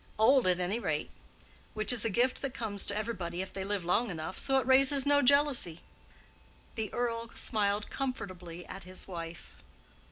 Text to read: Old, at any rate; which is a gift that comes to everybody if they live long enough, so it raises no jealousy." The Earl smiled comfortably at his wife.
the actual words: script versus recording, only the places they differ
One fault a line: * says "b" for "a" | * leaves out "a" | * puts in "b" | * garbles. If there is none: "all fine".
all fine